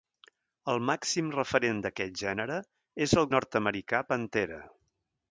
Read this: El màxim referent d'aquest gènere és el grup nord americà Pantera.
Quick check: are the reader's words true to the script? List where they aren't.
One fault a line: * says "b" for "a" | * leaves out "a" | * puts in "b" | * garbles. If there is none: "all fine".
* leaves out "grup"